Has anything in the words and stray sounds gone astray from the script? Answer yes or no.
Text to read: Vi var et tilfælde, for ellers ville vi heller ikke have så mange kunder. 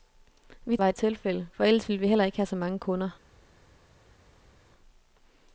no